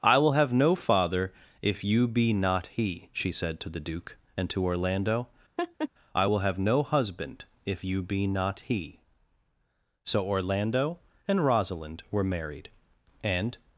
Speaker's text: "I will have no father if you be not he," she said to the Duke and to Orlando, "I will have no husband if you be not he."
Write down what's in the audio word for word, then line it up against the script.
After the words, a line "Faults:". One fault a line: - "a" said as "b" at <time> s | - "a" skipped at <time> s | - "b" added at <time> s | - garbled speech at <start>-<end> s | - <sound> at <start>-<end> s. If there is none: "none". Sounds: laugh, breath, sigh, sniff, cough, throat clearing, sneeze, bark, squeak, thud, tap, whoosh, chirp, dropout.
"I will have no father if you be not he," she said to the Duke and to Orlando, "I will have no husband if you be not he." So Orlando and Rosalind were married, and
Faults:
- laugh at 5.6-5.9 s
- "So Orlando and Rosalind were married and" added at 10.0 s